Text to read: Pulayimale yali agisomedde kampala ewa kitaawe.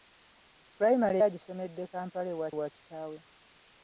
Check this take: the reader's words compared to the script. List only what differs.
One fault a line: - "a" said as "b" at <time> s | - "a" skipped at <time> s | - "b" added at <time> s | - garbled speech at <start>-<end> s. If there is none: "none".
- "yali" skipped at 1.2 s
- "ewa" added at 2.5 s